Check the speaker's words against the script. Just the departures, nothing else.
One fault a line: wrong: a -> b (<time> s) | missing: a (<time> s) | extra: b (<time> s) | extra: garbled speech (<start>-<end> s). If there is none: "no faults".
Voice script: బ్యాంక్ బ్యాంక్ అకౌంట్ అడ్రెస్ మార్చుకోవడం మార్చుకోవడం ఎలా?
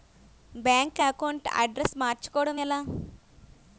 missing: బ్యాంక్ (1.0 s)
missing: మార్చుకోవడం (2.6 s)